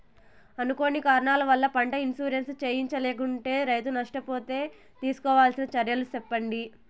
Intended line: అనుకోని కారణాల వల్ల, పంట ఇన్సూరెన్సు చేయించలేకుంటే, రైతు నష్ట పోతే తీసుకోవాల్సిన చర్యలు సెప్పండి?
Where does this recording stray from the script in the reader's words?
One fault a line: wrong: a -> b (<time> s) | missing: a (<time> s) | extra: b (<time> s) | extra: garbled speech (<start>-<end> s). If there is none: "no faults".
no faults